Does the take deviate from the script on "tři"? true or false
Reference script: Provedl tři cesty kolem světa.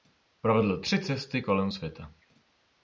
false